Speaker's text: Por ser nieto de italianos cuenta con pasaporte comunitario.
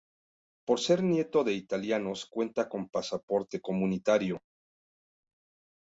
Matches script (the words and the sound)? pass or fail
pass